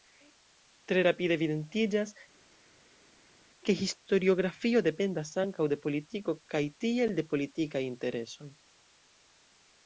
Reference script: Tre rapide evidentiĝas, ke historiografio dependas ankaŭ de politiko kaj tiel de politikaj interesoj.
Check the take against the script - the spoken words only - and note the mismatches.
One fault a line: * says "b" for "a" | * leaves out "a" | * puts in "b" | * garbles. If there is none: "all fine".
all fine